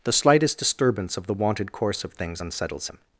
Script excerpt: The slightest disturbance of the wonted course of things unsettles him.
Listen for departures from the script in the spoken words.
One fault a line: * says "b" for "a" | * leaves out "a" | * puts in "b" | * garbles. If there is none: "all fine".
all fine